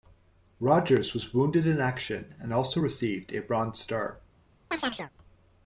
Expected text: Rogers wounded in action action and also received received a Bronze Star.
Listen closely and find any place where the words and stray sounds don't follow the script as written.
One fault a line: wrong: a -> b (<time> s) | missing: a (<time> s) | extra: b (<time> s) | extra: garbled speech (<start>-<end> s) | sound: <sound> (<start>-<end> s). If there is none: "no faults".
extra: was (1.1 s)
missing: action (2.3 s)
missing: received (3.3 s)
sound: chirp (4.7-5.1 s)